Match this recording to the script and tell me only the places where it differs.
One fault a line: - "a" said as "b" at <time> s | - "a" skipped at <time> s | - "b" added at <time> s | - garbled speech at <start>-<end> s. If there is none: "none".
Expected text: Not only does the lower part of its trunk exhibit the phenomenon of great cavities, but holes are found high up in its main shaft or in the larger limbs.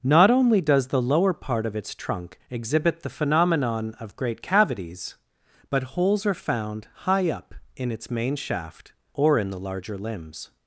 none